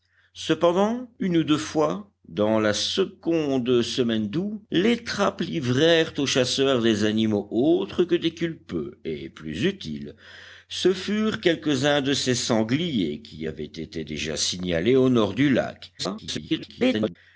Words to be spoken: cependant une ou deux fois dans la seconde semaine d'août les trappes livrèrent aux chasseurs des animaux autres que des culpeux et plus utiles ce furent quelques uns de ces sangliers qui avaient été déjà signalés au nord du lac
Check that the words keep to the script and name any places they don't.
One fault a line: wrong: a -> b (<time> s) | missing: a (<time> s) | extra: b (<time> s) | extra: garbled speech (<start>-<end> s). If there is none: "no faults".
extra: garbled speech (16.0-17.2 s)